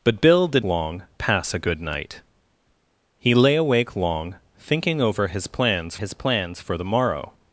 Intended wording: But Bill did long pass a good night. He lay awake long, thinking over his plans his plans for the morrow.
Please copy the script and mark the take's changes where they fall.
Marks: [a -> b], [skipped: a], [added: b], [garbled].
But Bill did long pass a good night. He lay awake long, thinking over his plans his plans for the morrow.